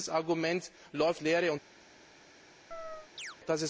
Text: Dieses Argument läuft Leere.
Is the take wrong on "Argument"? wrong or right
right